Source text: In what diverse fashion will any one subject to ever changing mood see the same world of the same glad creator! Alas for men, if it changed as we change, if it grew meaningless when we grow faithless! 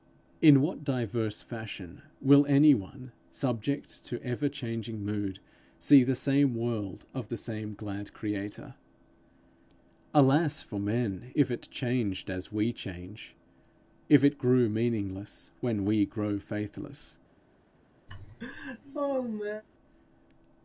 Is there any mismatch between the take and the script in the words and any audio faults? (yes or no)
yes